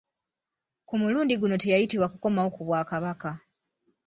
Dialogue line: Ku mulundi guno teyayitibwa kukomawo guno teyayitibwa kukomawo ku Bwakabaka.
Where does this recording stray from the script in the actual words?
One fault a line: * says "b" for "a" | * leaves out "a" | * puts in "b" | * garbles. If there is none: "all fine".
* leaves out "guno teyayitibwa kukomawo"